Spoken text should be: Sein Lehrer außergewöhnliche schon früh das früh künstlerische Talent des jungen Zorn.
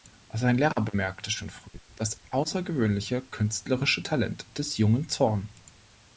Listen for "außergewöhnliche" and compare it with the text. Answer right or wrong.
wrong